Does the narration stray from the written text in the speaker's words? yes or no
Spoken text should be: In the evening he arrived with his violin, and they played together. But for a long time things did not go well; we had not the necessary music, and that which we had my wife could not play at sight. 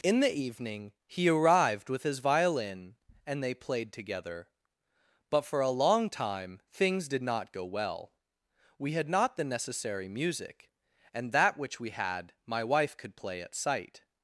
yes